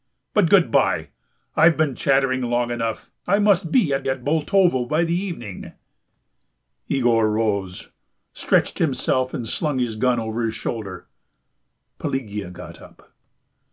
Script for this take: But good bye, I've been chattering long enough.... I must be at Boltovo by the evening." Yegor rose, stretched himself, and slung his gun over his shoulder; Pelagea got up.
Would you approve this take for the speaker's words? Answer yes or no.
no